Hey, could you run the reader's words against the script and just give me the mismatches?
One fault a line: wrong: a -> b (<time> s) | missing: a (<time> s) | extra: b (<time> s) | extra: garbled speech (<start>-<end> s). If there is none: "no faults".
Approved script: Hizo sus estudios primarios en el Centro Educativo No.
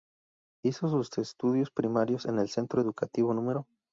no faults